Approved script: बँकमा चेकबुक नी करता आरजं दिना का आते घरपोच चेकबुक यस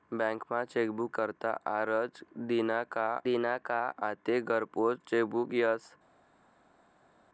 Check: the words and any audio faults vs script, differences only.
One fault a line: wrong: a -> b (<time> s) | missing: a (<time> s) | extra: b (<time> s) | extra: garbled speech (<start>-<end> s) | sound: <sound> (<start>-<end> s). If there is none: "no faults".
missing: नी (1.2 s)
extra: दिना का (3.2 s)